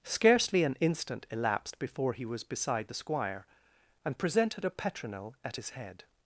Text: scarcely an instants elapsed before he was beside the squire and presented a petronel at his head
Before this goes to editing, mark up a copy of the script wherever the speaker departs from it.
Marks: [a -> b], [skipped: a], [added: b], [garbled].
scarcely an [instants -> instant] elapsed before he was beside the squire and presented a petronel at his head